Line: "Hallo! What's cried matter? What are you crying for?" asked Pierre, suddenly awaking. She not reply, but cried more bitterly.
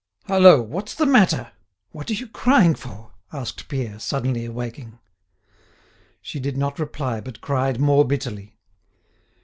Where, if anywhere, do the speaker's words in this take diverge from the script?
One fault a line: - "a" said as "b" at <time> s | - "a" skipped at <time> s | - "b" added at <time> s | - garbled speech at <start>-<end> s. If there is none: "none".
- "cried" said as "the" at 0.9 s
- "did" added at 6.4 s